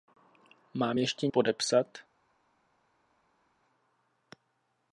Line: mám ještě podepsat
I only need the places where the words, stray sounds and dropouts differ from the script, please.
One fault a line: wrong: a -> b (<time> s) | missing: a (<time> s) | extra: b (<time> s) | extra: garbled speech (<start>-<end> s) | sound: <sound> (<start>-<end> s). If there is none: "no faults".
no faults